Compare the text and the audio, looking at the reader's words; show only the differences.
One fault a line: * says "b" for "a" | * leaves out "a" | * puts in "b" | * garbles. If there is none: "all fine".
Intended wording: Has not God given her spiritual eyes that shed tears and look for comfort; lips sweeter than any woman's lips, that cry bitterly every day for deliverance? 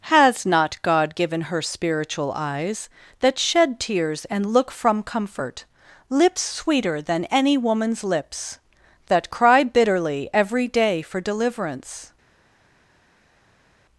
* says "from" for "for"